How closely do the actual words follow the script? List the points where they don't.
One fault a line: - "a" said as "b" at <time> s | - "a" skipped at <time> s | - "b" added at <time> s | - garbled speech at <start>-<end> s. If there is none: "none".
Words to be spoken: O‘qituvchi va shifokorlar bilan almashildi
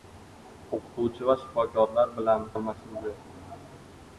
none